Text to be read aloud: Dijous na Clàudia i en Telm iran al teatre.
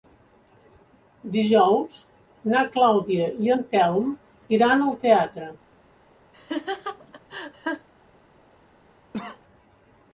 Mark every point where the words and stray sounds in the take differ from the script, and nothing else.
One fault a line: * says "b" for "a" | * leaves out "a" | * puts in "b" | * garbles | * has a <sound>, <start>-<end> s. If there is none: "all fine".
* has a laugh, 6.3-7.9 s
* has a cough, 9.1-9.4 s